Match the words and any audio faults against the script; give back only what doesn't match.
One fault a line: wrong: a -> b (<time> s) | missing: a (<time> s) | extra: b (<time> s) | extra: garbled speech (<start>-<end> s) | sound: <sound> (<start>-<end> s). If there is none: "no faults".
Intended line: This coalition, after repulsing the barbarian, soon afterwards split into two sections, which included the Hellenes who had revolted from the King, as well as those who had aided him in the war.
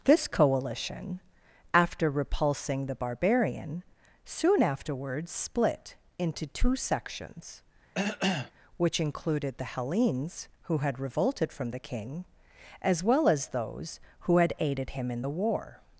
sound: cough (7.9-8.5 s)